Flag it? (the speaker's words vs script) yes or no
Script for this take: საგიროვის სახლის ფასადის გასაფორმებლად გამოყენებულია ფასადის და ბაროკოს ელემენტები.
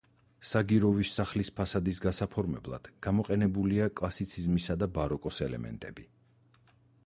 yes